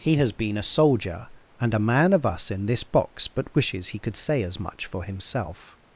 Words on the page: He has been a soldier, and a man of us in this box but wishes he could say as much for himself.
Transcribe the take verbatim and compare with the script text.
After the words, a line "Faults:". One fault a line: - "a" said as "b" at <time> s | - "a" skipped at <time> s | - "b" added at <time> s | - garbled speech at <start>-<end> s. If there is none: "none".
He has been a soldier, and a man of us in this box but wishes he could say as much for himself.
Faults:
none